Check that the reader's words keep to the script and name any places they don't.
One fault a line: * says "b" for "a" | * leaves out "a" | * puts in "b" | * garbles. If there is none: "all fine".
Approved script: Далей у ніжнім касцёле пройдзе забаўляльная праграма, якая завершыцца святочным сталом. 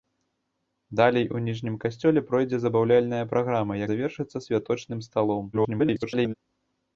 * leaves out "якая"
* garbles